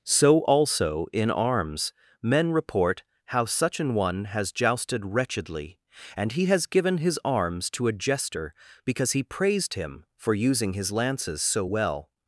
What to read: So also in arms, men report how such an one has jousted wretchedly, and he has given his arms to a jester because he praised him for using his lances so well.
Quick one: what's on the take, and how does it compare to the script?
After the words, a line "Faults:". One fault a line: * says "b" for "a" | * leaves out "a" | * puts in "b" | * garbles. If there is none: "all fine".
So also in arms, men report how such an one has jousted wretchedly, and he has given his arms to a jester because he praised him for using his lances so well.
Faults:
all fine